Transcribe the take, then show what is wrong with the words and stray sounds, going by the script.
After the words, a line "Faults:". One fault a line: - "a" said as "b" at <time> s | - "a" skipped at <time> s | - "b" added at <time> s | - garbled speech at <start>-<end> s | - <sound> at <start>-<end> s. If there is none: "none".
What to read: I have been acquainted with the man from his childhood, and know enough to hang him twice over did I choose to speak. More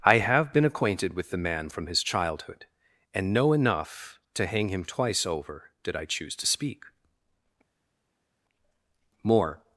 I have been acquainted with the man from his childhood, and know enough to hang him twice over did I choose to speak. More
Faults:
none